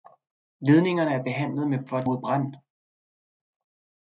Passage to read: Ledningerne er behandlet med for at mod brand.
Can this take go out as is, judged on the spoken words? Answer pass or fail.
pass